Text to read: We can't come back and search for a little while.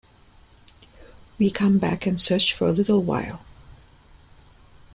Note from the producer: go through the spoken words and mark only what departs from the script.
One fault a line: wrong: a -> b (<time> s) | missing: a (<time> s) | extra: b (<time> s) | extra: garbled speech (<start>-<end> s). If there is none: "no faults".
missing: can't (1.5 s)